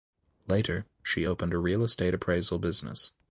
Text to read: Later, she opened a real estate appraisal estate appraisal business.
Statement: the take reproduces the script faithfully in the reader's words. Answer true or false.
false